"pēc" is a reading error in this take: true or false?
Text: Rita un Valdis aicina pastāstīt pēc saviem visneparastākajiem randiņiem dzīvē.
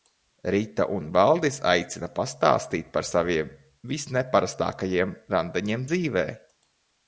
true